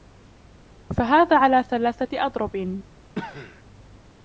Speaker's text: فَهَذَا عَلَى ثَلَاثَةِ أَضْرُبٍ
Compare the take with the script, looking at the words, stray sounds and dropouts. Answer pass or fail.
fail